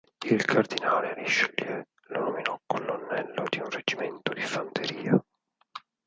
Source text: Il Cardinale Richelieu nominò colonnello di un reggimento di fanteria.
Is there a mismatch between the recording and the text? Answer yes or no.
yes